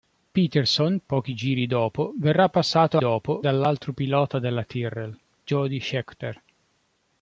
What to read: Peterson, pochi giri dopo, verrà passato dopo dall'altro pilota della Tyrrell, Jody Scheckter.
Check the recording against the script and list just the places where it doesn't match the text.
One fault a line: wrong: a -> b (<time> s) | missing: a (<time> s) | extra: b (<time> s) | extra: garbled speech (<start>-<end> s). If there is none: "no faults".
no faults